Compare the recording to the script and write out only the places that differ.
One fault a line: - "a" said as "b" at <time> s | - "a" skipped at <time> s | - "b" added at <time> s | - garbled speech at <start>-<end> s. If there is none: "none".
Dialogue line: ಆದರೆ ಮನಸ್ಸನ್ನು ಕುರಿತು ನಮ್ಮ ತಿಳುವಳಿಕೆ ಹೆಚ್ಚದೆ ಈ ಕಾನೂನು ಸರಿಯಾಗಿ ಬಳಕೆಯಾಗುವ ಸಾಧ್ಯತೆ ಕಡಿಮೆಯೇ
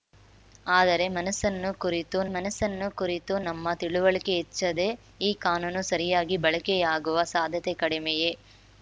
- "ಮನಸ್ಸನ್ನು ಕುರಿತು" added at 2.4 s